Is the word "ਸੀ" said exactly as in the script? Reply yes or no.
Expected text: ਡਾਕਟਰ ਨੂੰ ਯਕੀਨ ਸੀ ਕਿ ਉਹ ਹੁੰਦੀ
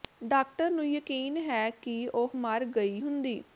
no